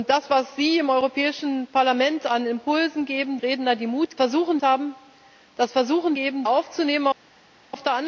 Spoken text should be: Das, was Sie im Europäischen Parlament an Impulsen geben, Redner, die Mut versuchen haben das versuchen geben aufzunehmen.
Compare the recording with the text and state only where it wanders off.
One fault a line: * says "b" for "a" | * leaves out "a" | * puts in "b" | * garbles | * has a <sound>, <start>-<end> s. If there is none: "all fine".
all fine